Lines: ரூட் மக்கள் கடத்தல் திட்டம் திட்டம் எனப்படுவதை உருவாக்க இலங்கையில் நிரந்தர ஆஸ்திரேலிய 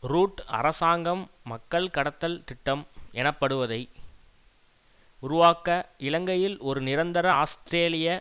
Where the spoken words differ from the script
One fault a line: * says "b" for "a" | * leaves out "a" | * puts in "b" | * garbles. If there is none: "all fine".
* puts in "அரசாங்கம்"
* leaves out "திட்டம்"
* puts in "ஒரு"